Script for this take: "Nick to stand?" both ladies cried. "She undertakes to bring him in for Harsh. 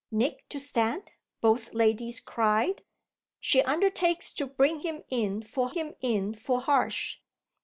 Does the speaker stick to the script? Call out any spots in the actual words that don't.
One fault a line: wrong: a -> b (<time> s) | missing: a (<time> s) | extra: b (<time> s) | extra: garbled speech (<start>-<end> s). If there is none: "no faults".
extra: him in for (5.7 s)